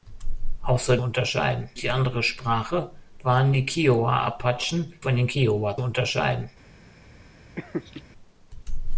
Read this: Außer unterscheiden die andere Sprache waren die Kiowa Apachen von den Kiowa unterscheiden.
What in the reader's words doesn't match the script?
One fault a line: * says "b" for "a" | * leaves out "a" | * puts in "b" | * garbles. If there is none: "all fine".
all fine